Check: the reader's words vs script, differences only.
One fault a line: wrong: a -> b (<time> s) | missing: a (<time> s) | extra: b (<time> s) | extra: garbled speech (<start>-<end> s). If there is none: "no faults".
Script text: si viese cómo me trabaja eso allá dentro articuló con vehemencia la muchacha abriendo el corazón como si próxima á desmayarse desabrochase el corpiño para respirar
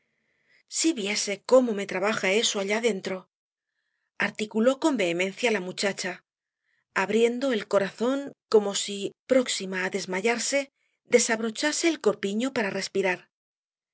no faults